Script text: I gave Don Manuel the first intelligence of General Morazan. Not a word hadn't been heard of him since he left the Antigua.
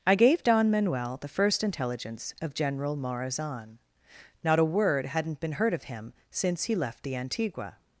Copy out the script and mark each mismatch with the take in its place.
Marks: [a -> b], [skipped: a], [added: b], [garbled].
I gave Don Manuel the first intelligence of General Morazan. Not a word hadn't been heard of him since he left the Antigua.